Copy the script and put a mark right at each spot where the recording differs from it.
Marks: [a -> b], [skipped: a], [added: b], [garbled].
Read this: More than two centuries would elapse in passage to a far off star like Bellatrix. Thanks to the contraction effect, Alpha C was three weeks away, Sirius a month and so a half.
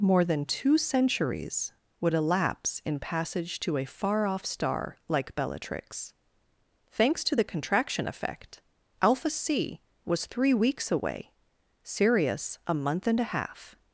More than two centuries would elapse in passage to a far off star like Bellatrix. Thanks to the contraction effect, Alpha C was three weeks away, Sirius a month and [skipped: so] a half.